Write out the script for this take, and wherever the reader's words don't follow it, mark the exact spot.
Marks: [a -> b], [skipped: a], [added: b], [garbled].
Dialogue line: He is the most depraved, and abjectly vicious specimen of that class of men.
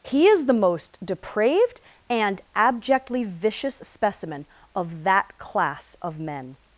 He is the most depraved, and abjectly vicious specimen of that class of men.